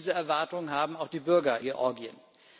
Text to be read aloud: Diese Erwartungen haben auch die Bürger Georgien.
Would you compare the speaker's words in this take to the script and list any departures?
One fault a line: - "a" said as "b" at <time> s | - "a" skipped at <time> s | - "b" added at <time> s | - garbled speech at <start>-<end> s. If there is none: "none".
none